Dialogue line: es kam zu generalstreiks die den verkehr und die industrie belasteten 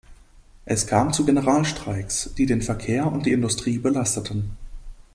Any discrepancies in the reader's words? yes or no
no